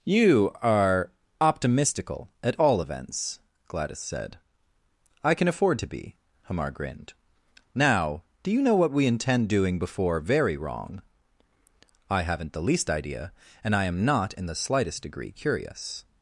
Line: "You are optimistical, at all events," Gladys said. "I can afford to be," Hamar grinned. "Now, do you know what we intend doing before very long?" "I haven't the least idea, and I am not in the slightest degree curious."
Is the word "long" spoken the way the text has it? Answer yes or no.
no